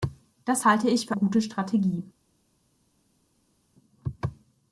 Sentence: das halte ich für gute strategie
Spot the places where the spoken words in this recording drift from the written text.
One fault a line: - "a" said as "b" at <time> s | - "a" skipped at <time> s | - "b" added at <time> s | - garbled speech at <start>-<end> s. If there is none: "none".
none